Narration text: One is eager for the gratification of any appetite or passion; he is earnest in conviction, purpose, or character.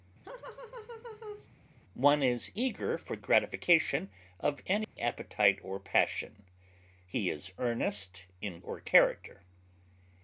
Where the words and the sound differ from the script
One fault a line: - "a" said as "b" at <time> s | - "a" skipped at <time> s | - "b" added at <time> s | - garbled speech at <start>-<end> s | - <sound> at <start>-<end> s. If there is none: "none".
- laugh at 0.2-1.5 s
- "the" skipped at 3.2 s
- dropout at 4.8-5.0 s
- "conviction purpose" skipped at 8.6 s